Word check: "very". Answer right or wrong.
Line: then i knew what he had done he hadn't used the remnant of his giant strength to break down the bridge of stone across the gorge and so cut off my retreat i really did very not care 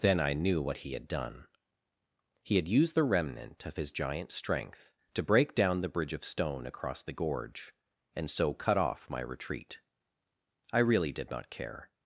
wrong